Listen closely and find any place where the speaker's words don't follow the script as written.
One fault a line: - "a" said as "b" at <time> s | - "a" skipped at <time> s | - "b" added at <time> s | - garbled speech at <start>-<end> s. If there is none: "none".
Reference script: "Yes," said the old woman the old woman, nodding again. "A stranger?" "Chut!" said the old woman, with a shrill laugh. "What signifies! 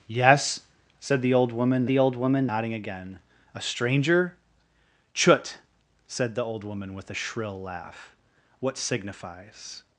none